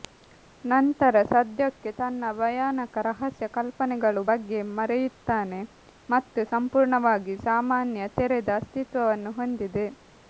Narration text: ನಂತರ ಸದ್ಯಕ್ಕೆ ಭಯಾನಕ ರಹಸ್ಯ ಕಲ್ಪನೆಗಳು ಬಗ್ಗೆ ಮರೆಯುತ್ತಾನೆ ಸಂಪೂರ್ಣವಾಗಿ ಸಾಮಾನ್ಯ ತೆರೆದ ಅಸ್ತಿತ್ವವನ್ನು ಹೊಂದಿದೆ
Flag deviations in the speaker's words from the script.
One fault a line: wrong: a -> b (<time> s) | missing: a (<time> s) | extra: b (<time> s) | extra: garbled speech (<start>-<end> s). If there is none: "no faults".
extra: ತನ್ನ (2.0 s)
extra: ಮತ್ತು (6.1 s)